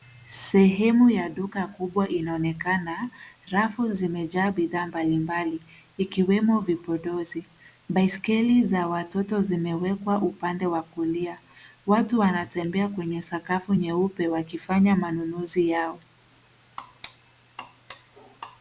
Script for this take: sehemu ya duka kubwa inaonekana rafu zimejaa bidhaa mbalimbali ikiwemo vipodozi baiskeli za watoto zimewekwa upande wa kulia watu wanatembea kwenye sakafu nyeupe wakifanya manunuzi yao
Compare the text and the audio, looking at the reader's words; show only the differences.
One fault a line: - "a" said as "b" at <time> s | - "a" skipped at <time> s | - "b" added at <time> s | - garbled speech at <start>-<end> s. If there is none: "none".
none